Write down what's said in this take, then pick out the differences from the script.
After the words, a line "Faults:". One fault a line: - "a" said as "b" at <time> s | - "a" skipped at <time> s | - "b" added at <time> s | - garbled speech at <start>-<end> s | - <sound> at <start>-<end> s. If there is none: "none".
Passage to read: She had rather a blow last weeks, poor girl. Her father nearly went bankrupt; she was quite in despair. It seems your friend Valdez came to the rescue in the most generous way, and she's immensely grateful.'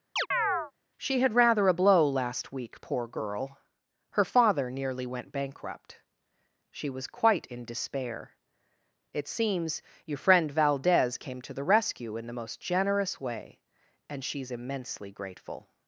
She had rather a blow last week, poor girl. Her father nearly went bankrupt; she was quite in despair. It seems your friend Valdez came to the rescue in the most generous way, and she's immensely grateful.'
Faults:
- chirp at 0.2-0.7 s
- "weeks" said as "week" at 2.5 s